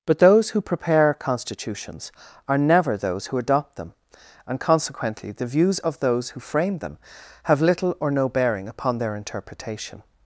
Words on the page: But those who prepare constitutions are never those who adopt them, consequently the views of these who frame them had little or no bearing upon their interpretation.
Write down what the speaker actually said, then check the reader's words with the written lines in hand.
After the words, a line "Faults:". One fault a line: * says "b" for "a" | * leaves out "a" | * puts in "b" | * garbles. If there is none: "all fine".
But those who prepare constitutions are never those who adopt them, and consequently the views of those who frame them have little or no bearing upon their interpretation.
Faults:
* puts in "and"
* says "those" for "these"
* says "have" for "had"